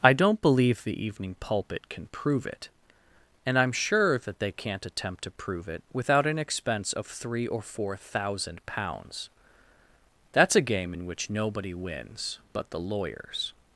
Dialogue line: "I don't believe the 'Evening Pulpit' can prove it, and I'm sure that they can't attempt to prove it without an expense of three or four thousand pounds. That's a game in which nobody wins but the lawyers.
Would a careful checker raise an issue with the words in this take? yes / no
no